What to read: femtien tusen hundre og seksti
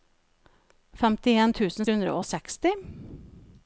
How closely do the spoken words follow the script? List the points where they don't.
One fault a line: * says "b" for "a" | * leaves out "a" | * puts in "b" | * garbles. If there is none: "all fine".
all fine